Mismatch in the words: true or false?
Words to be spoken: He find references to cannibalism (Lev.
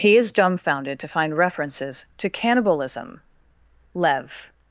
true